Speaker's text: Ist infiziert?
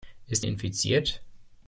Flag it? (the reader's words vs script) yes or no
no